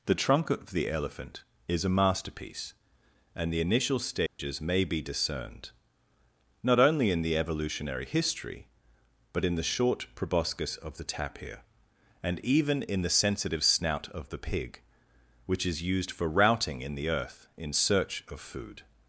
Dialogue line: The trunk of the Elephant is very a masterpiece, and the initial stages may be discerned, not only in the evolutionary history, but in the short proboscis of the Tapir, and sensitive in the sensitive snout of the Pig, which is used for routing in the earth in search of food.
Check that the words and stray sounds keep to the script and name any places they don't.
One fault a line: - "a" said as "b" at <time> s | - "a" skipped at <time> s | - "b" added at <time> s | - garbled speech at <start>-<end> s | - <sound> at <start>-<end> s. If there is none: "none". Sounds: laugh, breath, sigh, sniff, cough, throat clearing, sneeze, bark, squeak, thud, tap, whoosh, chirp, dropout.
- "very" skipped at 1.9 s
- dropout at 4.3-4.4 s
- "sensitive" said as "even" at 12.4 s